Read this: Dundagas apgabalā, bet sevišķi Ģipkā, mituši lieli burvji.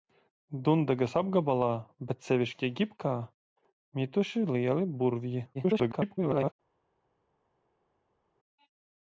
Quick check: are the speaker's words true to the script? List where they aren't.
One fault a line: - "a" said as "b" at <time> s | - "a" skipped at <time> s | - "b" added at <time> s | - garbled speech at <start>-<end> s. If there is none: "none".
- garbled speech at 5.5-6.5 s